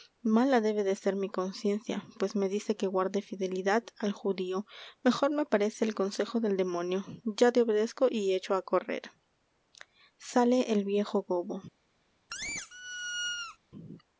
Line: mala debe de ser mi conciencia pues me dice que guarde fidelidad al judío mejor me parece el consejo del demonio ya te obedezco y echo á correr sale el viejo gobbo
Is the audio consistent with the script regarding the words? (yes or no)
yes